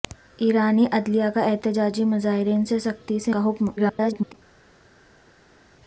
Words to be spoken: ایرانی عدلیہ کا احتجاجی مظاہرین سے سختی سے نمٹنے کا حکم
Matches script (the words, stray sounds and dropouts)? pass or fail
fail